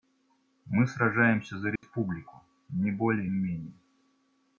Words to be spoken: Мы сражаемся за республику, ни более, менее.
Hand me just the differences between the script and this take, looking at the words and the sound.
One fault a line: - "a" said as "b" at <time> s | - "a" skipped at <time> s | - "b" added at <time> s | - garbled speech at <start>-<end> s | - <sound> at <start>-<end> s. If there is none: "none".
- dropout at 1.8-1.8 s